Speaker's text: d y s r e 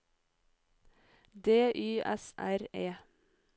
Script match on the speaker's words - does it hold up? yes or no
yes